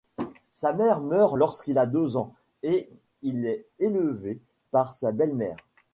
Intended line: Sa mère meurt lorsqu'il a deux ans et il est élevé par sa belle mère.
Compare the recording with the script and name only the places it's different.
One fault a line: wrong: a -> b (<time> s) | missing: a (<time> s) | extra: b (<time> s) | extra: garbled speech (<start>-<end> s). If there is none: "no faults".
no faults